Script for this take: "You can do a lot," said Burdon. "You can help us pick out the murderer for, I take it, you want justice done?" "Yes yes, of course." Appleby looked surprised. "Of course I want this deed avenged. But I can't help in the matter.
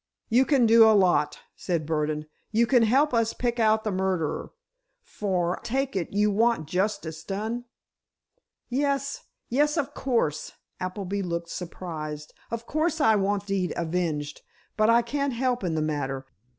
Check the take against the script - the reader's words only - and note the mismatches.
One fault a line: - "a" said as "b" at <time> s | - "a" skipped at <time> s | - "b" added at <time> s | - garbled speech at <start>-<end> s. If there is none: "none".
- "I" skipped at 5.6 s
- "this" skipped at 13.5 s